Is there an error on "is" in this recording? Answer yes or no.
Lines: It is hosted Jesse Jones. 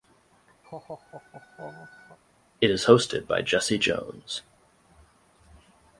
no